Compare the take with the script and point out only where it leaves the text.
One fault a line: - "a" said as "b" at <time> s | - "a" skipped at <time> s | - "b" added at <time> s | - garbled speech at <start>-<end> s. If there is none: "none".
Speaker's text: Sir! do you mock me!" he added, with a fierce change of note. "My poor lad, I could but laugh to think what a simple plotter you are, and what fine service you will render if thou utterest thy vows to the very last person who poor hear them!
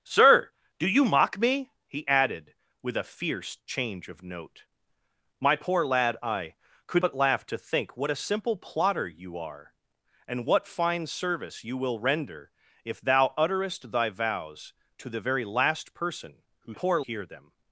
none